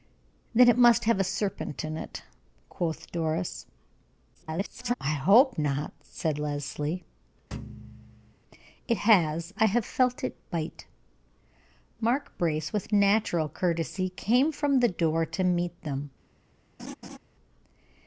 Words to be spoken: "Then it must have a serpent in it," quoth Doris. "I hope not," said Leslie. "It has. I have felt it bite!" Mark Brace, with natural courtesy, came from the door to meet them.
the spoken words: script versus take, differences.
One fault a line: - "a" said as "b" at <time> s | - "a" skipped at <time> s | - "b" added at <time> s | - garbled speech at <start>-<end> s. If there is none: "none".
- garbled speech at 4.3-4.9 s